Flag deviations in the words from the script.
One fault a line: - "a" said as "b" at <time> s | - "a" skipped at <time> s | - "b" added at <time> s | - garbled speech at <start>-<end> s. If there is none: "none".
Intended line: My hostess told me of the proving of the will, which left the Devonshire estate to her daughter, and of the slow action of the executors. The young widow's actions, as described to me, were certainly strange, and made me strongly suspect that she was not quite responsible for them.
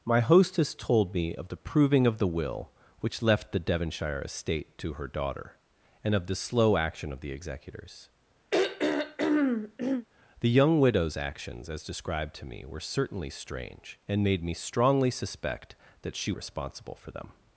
- "was not quite" skipped at 16.3 s